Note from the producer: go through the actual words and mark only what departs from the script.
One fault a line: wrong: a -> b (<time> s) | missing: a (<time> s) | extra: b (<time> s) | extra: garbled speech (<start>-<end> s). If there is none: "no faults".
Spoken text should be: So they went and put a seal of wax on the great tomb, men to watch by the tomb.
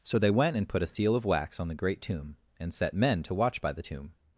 extra: and set (2.6 s)